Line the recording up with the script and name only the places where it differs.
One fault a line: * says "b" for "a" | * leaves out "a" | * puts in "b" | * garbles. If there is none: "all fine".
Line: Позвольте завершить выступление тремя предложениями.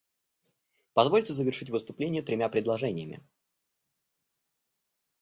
all fine